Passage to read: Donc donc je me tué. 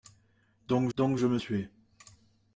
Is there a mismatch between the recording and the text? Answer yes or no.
no